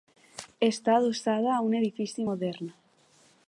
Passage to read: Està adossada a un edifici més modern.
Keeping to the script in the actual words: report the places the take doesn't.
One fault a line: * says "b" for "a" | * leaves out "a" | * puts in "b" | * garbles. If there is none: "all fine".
* leaves out "més"